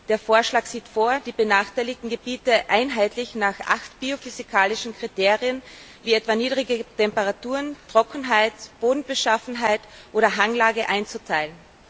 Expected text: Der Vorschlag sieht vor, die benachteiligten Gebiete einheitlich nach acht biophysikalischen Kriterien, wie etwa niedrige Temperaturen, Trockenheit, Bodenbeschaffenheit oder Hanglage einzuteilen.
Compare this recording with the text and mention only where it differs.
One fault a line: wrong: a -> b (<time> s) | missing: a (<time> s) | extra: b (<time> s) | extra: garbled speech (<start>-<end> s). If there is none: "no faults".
no faults